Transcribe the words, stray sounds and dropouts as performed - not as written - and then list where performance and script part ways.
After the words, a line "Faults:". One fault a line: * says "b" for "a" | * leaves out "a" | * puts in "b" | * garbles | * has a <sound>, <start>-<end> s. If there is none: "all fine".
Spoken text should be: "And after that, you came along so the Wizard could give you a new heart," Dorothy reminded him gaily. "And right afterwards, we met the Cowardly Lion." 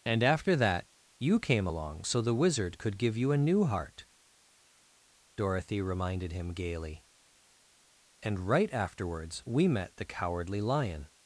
"And after that, you came along so the Wizard could give you a new heart," Dorothy reminded him gaily. "And right afterwards, we met the Cowardly Lion."
Faults:
all fine